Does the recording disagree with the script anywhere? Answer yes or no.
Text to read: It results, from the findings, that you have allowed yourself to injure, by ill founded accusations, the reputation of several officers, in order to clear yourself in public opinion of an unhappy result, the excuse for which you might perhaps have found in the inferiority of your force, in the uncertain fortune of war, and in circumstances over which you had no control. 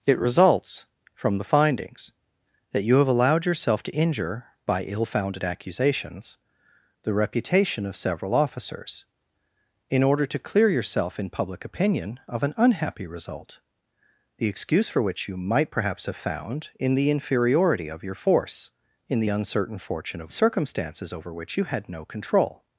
yes